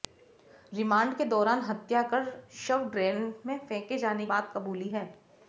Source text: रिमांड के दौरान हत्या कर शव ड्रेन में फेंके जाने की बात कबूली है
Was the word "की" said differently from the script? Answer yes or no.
yes